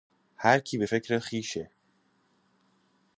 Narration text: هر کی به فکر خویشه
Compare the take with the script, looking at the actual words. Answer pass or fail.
pass